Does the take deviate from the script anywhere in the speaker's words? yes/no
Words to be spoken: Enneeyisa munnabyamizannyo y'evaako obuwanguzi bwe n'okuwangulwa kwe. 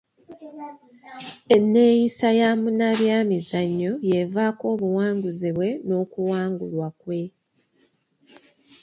yes